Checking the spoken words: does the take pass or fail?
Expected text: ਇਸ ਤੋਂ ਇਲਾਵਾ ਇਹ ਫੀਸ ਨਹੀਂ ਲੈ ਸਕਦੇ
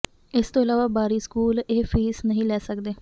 fail